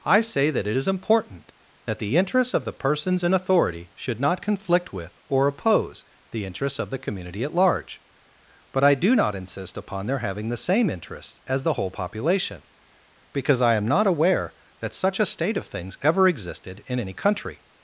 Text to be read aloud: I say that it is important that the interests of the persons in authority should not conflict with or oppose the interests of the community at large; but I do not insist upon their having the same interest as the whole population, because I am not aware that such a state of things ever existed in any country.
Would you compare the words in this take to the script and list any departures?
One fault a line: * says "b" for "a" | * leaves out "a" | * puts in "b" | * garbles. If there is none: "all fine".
* says "interests" for "interest"